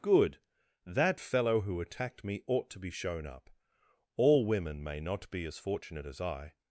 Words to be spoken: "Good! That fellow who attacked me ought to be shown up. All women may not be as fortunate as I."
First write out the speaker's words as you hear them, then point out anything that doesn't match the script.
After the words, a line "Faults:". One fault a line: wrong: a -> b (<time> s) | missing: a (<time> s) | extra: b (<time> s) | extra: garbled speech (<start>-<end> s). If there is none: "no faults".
"Good! That fellow who attacked me ought to be shown up. All women may not be as fortunate as I."
Faults:
no faults